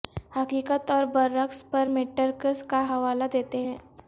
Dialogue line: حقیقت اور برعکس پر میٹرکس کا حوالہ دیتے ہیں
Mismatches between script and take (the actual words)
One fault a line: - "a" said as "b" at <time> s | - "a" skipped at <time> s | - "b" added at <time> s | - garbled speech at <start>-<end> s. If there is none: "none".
none